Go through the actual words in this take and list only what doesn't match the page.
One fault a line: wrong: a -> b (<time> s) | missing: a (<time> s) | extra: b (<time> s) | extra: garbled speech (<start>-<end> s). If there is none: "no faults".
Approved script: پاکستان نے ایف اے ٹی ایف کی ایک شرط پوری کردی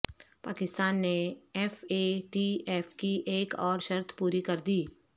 extra: اور (3.6 s)